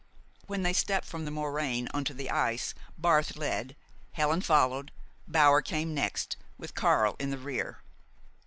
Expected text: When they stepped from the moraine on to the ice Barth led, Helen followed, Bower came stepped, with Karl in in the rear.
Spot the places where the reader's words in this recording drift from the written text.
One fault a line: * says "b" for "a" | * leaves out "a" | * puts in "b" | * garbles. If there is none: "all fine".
* says "next" for "stepped"
* leaves out "in"